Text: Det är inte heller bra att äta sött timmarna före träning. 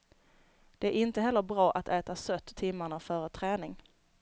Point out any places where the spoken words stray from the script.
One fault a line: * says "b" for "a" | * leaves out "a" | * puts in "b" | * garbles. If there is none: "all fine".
all fine